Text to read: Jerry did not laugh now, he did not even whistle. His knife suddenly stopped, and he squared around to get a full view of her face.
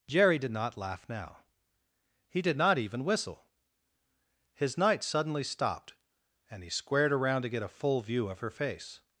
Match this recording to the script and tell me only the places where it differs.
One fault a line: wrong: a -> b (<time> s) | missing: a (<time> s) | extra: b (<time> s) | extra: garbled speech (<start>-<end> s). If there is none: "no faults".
wrong: knife -> night (4.8 s)